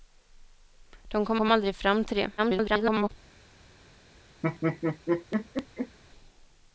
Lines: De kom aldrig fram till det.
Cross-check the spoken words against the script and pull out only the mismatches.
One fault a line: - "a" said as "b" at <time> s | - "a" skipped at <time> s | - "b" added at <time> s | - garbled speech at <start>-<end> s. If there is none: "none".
- "kom" added at 1.3 s
- garbled speech at 2.4-3.1 s